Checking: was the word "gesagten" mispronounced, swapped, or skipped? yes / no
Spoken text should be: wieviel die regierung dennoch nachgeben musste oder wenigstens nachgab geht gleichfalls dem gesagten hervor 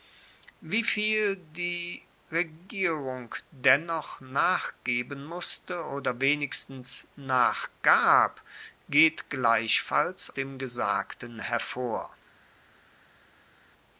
no